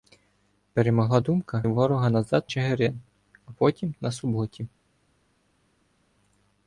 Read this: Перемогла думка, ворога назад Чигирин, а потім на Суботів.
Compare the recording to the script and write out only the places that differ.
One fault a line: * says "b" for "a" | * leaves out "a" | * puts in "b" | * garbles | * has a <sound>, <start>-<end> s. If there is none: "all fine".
all fine